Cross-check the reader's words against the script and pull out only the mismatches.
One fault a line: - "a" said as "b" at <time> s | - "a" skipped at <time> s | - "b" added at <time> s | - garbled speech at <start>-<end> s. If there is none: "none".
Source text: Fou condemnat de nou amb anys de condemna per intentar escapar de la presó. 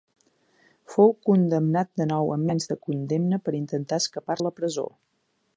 none